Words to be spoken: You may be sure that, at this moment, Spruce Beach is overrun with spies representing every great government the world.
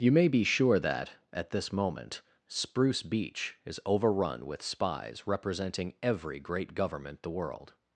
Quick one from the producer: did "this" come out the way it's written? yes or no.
yes